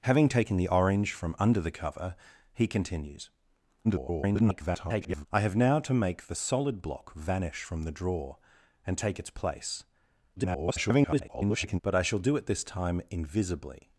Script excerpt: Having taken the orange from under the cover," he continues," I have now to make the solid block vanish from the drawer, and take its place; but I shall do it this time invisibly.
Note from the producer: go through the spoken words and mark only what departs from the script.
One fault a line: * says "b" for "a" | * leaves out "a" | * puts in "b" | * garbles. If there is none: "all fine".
* garbles
* garbles